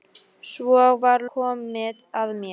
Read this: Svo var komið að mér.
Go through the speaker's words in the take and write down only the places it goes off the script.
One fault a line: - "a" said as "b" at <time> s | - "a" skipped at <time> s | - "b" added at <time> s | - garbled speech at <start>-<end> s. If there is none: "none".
none